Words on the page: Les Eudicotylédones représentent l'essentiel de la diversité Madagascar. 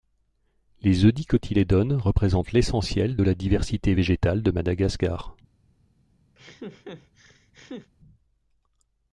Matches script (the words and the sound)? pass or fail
fail